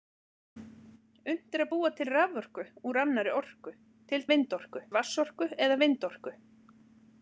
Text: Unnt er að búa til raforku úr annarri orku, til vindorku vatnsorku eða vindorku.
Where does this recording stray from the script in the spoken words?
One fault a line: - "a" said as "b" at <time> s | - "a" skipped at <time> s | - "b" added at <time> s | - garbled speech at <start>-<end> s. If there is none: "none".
none